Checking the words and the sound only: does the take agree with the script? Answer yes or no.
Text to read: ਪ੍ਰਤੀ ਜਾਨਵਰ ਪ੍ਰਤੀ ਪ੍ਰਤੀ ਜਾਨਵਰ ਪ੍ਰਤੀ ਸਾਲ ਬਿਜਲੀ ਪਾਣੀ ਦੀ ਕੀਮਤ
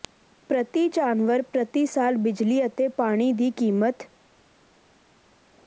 no